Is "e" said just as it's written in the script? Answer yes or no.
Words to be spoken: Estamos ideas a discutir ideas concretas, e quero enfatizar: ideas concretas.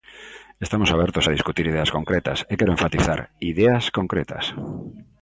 yes